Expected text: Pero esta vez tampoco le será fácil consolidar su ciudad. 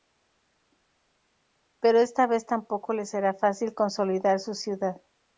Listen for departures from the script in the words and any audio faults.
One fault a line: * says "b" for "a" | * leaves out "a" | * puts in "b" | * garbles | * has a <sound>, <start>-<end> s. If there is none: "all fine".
all fine